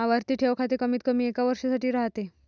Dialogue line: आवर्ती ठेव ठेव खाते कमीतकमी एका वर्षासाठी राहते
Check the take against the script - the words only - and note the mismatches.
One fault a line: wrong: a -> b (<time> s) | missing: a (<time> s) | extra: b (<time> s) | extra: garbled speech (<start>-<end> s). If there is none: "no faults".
missing: ठेव (0.5 s)